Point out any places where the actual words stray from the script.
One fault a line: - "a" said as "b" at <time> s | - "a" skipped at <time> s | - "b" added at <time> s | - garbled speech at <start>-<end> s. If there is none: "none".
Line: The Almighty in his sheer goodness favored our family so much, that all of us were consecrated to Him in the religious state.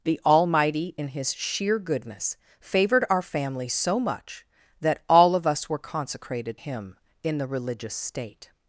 - "to" skipped at 6.6 s